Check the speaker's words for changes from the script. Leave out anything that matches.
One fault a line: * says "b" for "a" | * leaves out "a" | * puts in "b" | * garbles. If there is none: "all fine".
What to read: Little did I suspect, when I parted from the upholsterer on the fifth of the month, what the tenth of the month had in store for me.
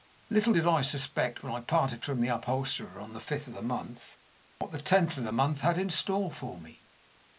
all fine